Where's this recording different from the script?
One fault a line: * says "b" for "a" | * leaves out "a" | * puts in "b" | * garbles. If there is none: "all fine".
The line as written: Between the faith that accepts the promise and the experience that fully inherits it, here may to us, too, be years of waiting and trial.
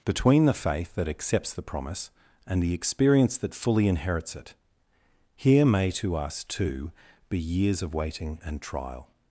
all fine